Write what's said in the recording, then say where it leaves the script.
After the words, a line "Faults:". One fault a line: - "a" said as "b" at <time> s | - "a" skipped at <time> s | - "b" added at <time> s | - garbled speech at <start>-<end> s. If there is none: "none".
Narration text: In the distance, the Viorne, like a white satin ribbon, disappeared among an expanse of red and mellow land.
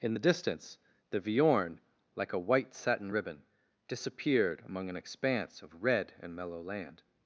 In the distance, the Viorne, like a white satin ribbon, disappeared among an expanse of red and mellow land.
Faults:
none